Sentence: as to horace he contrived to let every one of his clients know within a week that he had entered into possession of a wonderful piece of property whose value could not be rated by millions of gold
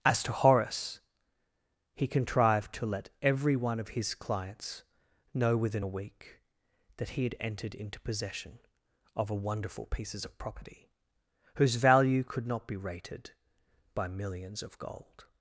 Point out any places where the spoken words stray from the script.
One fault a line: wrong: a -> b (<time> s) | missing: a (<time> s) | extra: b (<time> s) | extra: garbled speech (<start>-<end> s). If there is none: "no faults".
wrong: piece -> pieces (9.9 s)